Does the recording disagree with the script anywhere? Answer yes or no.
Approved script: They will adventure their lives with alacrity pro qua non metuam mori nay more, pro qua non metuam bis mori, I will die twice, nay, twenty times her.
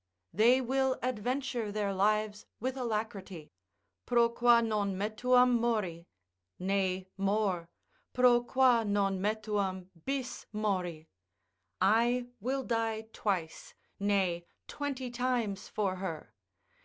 yes